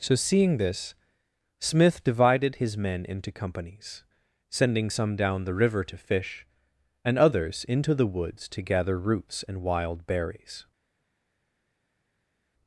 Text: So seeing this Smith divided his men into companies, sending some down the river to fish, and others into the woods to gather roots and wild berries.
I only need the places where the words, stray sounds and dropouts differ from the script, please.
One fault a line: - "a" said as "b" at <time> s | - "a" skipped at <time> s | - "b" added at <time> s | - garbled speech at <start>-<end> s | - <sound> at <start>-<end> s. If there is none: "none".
none